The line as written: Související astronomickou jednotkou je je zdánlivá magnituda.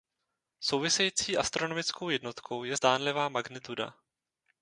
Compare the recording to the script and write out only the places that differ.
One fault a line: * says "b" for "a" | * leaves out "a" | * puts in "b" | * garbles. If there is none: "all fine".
* leaves out "je"